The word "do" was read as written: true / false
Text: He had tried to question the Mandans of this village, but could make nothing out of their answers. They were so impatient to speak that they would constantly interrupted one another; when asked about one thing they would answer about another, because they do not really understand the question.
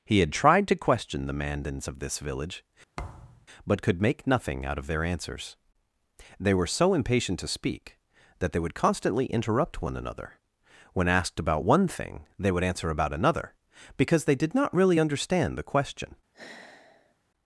false